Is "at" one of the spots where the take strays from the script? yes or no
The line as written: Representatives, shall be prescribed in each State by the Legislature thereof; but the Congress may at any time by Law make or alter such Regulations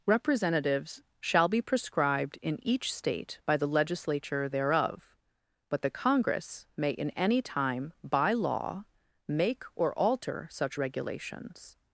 yes